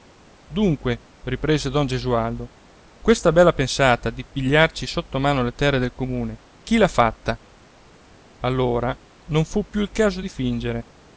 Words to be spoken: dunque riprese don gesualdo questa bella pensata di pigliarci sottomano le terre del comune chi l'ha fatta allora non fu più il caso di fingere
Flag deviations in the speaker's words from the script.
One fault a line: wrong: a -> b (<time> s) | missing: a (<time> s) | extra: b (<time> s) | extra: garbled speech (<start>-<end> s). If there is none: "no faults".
no faults